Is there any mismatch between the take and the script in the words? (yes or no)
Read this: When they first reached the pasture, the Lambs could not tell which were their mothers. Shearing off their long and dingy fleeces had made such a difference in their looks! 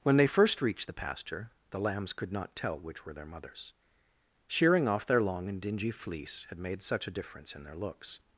yes